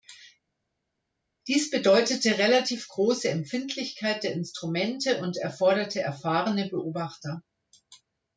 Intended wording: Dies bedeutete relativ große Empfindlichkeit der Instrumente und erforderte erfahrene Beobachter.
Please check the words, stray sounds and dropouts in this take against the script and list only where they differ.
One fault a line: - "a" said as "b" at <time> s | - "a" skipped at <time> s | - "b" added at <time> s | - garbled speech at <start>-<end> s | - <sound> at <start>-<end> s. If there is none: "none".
none